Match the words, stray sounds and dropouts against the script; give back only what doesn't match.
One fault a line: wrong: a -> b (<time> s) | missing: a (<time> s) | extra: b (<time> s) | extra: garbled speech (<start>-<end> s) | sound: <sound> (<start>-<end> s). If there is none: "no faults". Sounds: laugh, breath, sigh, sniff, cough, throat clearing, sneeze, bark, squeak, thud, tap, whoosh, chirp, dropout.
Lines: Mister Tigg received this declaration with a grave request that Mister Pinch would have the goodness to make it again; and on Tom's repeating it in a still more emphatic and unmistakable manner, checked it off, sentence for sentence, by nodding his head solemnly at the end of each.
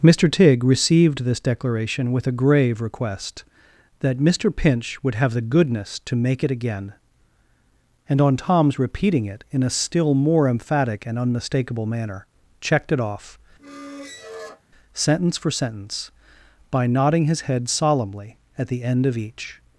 sound: squeak (13.6-14.6 s)